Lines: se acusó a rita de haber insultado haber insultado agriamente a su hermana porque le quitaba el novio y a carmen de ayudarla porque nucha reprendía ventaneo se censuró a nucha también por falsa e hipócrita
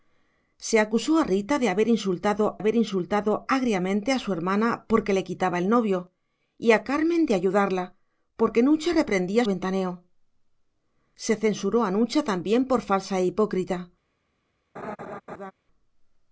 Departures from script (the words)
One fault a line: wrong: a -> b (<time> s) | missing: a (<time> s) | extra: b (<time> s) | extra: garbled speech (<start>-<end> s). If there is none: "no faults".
no faults